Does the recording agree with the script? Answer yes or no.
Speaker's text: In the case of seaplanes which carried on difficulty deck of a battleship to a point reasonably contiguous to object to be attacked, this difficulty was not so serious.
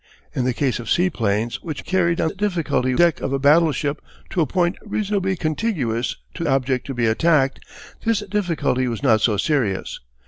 yes